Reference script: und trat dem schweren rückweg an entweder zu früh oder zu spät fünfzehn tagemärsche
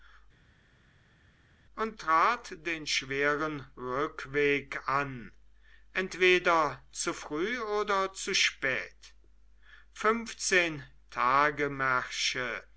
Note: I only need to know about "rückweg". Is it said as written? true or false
true